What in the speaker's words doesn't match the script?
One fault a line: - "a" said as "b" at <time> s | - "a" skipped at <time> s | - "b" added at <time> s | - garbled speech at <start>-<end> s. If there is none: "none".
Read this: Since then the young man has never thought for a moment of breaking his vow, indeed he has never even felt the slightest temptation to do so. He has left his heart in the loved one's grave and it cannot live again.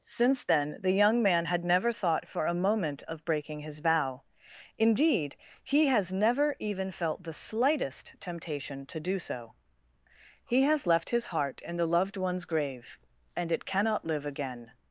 - "has" said as "had" at 1.4 s